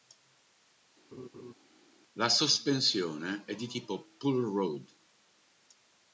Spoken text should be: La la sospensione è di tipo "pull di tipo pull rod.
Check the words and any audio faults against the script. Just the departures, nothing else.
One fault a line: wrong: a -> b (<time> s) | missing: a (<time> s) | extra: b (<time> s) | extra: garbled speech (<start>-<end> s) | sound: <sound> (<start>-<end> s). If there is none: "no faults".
sound: laugh (1.1-1.5 s)
missing: la (2.3 s)
missing: di tipo pull (4.4 s)